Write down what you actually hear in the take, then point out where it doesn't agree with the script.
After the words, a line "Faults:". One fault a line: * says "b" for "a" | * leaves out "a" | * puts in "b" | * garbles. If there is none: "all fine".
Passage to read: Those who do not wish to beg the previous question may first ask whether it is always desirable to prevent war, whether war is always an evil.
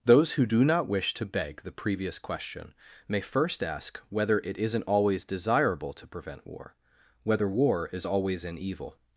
Those who do not wish to beg the previous question may first ask whether it isn't always desirable to prevent war, whether war is always an evil.
Faults:
* says "isn't" for "is"